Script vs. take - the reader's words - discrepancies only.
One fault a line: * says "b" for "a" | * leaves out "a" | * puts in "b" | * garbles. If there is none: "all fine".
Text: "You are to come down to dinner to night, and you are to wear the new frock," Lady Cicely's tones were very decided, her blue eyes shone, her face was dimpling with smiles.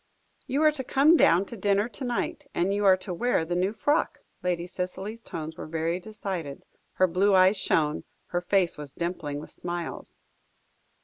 all fine